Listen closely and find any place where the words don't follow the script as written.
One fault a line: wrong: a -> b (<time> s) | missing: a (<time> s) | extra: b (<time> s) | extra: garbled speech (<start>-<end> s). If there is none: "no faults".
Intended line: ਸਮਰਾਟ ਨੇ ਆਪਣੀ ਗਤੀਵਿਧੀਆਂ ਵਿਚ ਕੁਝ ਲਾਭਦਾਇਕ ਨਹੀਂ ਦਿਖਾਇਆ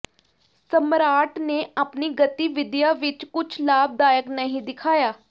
no faults